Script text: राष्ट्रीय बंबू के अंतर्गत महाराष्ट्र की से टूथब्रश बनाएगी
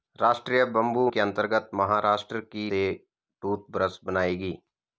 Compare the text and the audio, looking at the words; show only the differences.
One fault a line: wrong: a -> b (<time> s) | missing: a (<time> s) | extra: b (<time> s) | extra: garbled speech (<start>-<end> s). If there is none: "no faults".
no faults